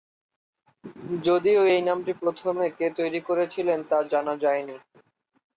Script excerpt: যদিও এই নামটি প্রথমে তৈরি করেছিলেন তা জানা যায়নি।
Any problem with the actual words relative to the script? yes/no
yes